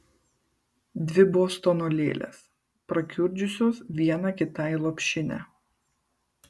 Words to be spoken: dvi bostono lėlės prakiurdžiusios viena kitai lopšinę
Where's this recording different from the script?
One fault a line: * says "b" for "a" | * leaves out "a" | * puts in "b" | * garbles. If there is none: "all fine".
all fine